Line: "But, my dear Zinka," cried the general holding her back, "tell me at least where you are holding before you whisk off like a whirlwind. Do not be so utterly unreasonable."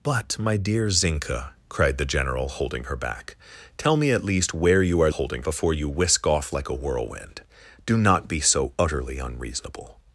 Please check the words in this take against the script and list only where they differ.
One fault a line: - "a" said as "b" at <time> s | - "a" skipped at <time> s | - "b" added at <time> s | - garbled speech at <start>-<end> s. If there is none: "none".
none